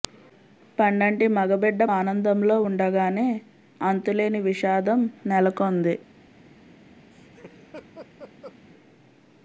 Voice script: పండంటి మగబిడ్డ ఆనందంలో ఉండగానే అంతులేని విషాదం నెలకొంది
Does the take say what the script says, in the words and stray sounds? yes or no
no